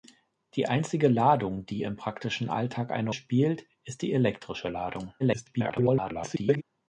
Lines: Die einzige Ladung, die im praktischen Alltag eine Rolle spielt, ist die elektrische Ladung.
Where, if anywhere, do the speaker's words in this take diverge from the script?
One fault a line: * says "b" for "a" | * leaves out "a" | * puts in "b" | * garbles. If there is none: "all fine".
* leaves out "Rolle"
* garbles